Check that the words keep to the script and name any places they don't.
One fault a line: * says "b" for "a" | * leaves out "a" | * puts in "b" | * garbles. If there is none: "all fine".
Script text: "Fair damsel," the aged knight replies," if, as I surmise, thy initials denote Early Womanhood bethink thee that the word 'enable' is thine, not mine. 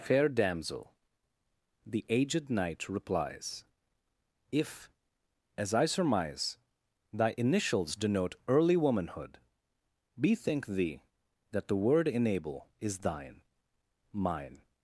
* leaves out "not"